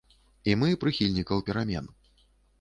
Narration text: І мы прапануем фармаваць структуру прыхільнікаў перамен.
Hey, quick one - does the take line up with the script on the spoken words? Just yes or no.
no